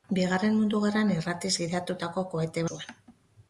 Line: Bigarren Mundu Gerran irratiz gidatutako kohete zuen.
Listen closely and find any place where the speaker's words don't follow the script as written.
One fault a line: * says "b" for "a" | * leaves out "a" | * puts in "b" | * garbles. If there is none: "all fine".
all fine